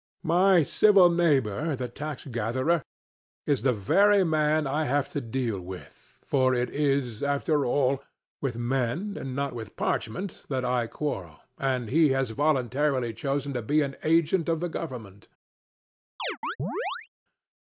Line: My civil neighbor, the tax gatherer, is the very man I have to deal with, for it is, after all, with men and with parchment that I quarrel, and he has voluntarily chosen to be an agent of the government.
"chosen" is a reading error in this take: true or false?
false